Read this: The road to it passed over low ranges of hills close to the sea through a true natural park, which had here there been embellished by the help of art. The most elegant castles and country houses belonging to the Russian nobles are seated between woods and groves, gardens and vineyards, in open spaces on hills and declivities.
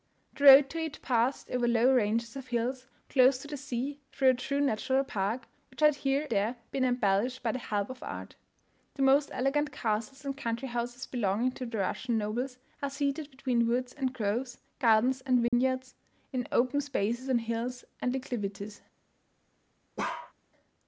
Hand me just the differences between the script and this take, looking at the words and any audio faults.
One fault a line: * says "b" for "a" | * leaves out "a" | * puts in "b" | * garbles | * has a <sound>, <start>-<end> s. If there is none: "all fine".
* has a dropout, 15.5-15.5 s
* has a bark, 20.0-20.3 s